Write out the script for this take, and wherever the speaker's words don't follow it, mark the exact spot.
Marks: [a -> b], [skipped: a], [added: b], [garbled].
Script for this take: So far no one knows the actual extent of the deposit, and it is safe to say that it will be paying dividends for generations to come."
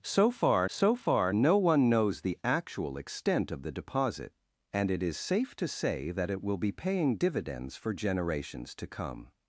So far [added: so far] no one knows the actual extent of the deposit, and it is safe to say that it will be paying dividends for generations to come."